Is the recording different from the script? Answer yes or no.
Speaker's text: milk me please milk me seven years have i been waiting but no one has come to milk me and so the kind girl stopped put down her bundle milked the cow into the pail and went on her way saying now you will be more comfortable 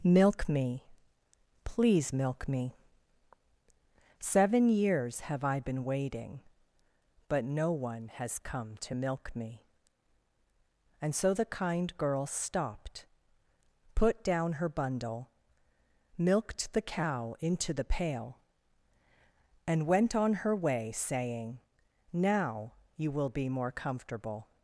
no